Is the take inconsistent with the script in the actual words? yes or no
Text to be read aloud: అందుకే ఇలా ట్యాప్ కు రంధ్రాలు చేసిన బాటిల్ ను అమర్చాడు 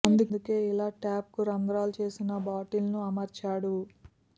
no